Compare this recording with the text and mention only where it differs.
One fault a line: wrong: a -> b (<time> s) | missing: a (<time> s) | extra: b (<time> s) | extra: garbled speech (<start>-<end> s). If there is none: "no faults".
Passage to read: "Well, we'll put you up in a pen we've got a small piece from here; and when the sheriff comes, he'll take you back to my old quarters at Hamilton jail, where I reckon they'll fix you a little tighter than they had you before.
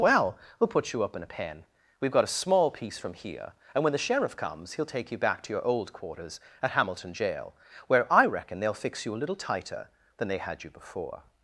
wrong: my -> your (5.5 s)